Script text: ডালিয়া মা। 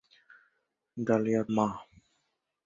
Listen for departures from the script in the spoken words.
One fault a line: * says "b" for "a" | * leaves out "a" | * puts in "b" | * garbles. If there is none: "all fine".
all fine